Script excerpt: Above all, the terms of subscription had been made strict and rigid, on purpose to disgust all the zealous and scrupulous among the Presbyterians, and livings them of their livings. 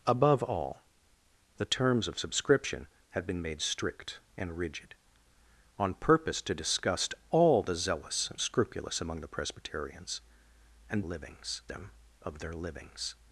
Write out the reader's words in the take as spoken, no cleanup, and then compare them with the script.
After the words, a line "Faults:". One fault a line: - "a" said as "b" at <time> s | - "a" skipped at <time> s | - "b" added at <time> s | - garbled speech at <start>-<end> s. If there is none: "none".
Above all, the terms of subscription had been made strict and rigid, on purpose to disgust all the zealous and scrupulous among the Presbyterians, and livings them of their livings.
Faults:
none